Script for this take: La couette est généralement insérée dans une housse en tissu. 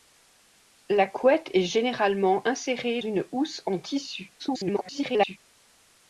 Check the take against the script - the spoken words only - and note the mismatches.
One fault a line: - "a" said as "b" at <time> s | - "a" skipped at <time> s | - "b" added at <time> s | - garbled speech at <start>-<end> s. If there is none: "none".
- "dans" skipped at 3.0 s
- garbled speech at 4.4-5.4 s